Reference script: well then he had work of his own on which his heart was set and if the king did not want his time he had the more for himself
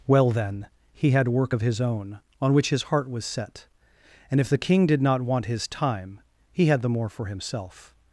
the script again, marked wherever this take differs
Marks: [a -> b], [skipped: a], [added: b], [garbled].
well then he had work of his own on which his heart was set and if the king did not want his time he had the more for himself